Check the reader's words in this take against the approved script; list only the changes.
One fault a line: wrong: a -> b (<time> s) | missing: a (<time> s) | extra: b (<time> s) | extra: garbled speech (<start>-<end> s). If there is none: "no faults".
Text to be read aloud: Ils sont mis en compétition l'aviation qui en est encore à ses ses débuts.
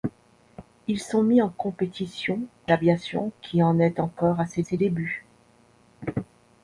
no faults